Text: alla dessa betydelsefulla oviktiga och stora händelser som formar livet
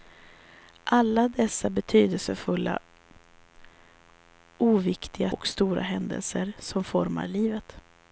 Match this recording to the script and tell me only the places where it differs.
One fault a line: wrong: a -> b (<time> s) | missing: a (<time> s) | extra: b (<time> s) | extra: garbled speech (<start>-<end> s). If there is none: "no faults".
no faults